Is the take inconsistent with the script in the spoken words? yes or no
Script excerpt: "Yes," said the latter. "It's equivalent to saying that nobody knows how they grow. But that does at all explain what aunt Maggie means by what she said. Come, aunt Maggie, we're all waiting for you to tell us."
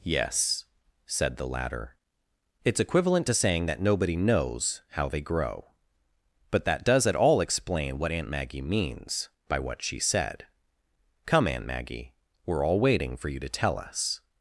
no